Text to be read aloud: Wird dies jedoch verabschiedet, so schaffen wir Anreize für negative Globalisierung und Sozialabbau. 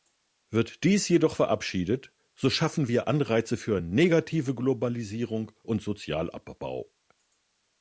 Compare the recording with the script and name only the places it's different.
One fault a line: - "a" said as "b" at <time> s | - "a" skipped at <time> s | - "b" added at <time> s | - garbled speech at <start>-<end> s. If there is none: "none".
none